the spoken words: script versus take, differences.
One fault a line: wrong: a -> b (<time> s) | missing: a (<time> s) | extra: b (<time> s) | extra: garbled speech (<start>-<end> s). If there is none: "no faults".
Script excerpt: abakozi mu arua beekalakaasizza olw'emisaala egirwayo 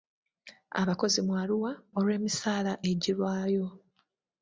missing: beekalakaasizza (1.7 s)